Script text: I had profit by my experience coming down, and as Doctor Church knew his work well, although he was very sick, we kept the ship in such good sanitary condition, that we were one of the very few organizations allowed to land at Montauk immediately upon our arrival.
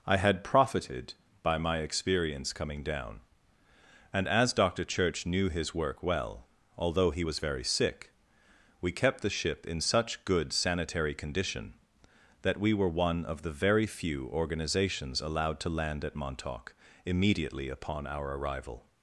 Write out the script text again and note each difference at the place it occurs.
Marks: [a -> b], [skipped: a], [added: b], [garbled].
I had [profit -> profited] by my experience coming down, and as Doctor Church knew his work well, although he was very sick, we kept the ship in such good sanitary condition, that we were one of the very few organizations allowed to land at Montauk immediately upon our arrival.